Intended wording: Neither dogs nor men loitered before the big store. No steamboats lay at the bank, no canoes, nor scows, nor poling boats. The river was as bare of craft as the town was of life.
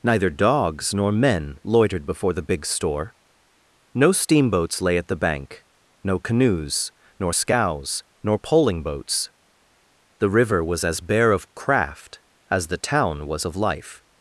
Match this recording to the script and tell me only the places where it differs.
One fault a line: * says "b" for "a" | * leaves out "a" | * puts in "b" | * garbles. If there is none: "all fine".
all fine